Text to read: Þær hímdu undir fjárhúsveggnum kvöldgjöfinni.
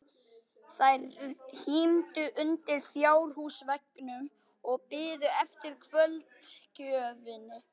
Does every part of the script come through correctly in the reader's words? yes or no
no